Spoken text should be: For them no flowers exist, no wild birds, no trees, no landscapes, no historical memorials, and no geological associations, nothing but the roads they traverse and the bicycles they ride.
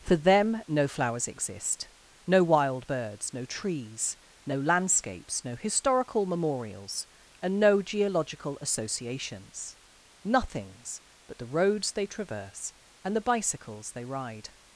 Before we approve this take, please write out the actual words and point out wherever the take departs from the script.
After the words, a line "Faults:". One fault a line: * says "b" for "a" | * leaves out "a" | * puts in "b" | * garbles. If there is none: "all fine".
For them no flowers exist, no wild birds, no trees, no landscapes, no historical memorials, and no geological associations, nothings but the roads they traverse and the bicycles they ride.
Faults:
* says "nothings" for "nothing"